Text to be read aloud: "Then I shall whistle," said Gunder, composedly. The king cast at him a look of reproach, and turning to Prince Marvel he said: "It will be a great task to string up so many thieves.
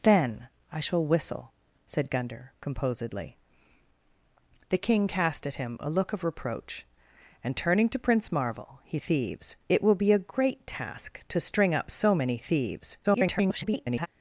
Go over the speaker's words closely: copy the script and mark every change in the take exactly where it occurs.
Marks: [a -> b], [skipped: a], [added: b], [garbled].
"Then I shall whistle," said Gunder, composedly. The king cast at him a look of reproach, and turning to Prince Marvel he [said: -> thieves] "It will be a great task to string up so many thieves. [garbled]